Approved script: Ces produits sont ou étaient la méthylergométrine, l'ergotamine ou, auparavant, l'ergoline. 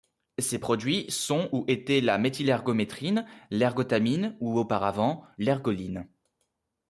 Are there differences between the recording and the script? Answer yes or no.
no